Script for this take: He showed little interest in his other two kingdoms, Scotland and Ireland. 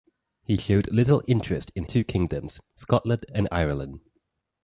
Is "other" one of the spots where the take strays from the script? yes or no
yes